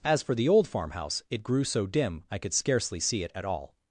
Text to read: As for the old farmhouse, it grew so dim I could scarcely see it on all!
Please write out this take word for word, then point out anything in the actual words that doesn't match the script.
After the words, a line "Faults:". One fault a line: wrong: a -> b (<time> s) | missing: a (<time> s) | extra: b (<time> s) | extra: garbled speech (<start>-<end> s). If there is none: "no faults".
As for the old farmhouse, it grew so dim I could scarcely see it at all!
Faults:
wrong: on -> at (3.4 s)